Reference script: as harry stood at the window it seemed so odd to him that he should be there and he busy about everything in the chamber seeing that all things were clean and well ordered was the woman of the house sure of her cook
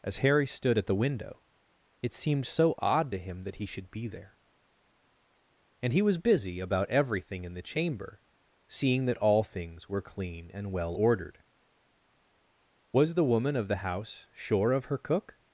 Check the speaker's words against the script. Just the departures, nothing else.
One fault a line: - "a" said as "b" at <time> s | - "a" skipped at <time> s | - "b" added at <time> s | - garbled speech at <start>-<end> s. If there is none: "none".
- "was" added at 6.0 s